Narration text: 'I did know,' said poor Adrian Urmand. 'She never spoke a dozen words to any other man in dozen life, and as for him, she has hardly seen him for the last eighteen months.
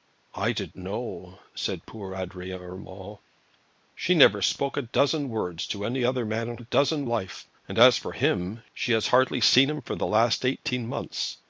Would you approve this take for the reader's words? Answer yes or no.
yes